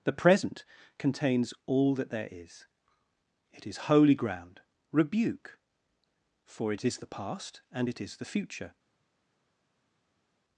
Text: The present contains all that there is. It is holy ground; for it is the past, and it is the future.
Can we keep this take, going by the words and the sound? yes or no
no